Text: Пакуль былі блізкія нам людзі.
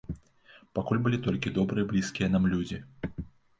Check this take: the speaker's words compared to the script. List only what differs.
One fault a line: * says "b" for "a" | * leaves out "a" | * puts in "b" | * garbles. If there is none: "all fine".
* puts in "толькі добрыя"